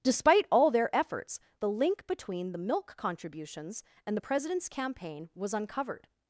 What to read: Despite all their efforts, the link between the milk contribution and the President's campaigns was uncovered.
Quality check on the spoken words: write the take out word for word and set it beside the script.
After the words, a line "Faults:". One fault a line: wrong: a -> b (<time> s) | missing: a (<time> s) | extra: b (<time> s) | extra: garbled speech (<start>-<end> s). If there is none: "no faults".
Despite all their efforts, the link between the milk contributions and the President's campaign was uncovered.
Faults:
wrong: contribution -> contributions (2.9 s)
wrong: campaigns -> campaign (4.7 s)